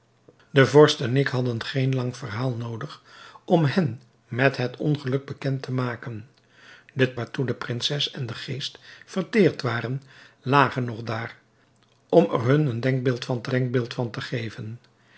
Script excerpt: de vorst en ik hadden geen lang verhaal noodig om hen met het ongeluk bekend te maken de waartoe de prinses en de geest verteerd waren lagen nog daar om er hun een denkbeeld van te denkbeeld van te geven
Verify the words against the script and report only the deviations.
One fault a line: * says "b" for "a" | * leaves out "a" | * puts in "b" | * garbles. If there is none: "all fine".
all fine